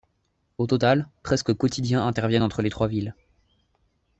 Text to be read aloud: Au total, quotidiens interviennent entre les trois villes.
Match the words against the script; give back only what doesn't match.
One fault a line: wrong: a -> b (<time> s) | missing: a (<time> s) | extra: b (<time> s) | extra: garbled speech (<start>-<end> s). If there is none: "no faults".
extra: presque (1.2 s)